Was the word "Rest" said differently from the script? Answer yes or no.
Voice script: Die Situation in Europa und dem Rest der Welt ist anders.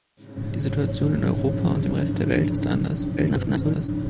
no